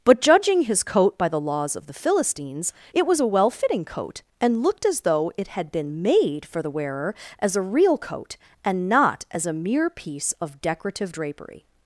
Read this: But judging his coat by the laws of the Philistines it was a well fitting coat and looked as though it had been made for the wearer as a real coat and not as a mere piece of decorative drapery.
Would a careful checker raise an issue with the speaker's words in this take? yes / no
no